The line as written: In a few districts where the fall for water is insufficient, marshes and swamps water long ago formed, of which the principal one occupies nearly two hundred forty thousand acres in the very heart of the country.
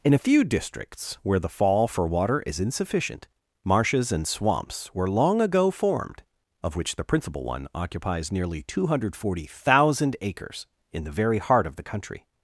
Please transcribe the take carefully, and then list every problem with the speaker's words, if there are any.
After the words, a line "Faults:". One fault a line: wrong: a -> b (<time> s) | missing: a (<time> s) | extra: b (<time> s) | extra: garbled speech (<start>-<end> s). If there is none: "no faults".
In a few districts where the fall for water is insufficient, marshes and swamps were long ago formed, of which the principal one occupies nearly two hundred forty thousand acres in the very heart of the country.
Faults:
wrong: water -> were (4.9 s)